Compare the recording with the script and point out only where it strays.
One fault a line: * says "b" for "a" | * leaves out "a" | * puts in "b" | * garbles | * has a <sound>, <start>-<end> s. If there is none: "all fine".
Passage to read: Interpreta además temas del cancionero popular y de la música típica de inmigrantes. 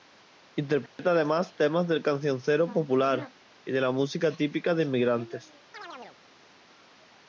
* has a dropout, 0.9-1.0 s
* has a chirp, 5.7-6.2 s